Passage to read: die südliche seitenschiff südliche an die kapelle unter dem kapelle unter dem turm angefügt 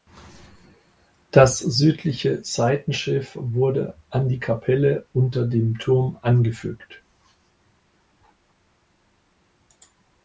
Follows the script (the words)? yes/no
no